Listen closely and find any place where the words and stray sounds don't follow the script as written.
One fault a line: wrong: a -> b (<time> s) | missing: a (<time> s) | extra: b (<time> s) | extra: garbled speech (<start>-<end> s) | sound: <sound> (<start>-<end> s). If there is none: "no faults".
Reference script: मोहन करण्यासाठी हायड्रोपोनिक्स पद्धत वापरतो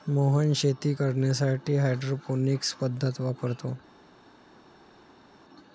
extra: शेती (0.6 s)